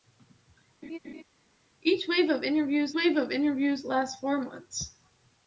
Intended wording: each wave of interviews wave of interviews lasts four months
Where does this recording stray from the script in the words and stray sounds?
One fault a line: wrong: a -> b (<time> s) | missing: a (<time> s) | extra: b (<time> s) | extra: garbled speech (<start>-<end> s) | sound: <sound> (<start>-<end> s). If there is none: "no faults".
sound: laugh (0.8-1.2 s)